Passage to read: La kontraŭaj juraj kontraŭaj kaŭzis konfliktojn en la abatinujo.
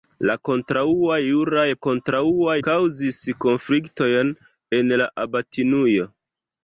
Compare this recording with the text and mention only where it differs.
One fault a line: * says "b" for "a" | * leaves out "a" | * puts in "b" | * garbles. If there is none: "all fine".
all fine